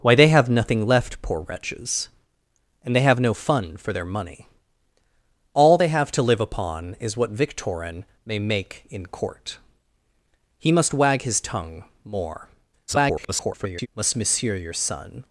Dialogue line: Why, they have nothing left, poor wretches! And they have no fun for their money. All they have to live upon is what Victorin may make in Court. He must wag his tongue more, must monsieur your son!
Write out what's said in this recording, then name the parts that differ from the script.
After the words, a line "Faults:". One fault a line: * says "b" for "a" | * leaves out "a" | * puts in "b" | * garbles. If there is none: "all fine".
Why, they have nothing left, poor wretches! And they have no fun for their money. All they have to live upon is what Victorin may make in Court. He must wag his tongue more, [garbled] must monsieur your son!
Faults:
* garbles